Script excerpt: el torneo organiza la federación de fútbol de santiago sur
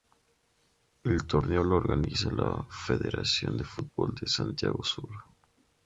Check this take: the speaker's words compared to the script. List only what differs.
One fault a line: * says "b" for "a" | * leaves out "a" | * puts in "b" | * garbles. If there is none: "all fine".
* puts in "lo"